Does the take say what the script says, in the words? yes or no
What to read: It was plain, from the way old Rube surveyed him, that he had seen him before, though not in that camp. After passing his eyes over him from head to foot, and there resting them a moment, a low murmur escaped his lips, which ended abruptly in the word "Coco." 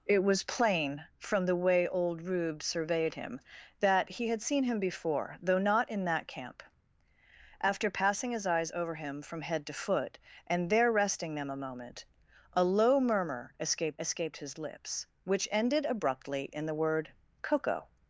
no